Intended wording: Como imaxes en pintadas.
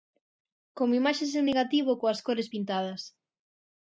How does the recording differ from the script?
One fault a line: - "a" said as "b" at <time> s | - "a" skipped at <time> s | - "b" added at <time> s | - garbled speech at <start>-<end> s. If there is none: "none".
- "negativo coas cores" added at 1.5 s